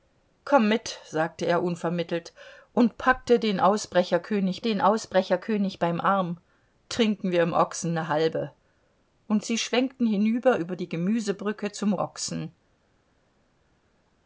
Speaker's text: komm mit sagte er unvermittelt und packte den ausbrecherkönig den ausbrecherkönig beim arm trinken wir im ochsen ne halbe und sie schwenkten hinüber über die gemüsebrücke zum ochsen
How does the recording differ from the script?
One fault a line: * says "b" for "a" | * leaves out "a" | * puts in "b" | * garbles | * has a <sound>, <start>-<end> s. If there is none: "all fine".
all fine